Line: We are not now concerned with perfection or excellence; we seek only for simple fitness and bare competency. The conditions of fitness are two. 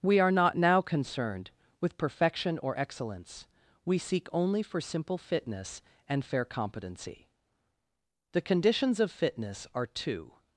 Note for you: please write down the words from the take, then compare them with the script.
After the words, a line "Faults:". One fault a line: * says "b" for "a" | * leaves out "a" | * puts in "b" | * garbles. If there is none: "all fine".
We are not now concerned with perfection or excellence; we seek only for simple fitness and fair competency. The conditions of fitness are two.
Faults:
* says "fair" for "bare"